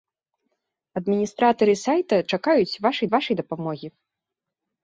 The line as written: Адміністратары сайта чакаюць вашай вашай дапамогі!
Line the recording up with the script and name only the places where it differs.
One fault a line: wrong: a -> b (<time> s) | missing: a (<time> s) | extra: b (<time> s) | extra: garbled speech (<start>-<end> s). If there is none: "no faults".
no faults